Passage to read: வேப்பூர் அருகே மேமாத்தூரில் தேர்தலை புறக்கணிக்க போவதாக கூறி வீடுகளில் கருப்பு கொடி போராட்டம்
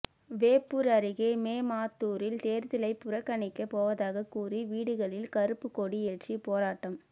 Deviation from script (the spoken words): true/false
true